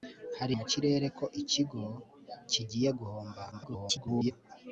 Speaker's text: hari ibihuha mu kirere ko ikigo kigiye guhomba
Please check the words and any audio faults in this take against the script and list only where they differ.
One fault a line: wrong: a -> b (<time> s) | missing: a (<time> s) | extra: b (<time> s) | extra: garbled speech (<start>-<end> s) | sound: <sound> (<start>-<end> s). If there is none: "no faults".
missing: ibihuha (0.5 s)
extra: garbled speech (3.5-4.3 s)